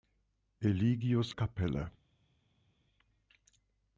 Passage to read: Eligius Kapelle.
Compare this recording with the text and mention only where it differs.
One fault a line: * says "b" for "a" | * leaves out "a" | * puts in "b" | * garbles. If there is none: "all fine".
all fine